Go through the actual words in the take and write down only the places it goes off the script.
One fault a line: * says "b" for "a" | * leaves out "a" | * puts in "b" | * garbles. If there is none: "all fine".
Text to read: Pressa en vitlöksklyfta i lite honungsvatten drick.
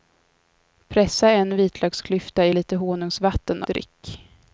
all fine